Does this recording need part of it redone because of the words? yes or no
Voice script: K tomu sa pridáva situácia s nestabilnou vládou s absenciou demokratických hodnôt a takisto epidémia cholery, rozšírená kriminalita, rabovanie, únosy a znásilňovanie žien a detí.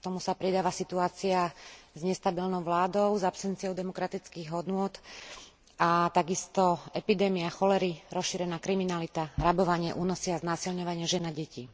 no